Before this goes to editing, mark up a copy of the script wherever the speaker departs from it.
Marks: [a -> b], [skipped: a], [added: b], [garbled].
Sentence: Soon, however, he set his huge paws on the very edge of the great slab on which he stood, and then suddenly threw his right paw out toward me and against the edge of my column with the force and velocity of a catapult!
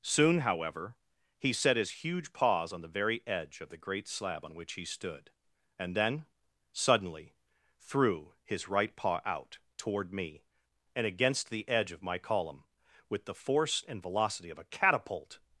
Soon, however, he set his huge paws on the very edge of the great slab on which he stood, and then suddenly threw his right paw out toward me and against the edge of my column with the force and velocity of a catapult!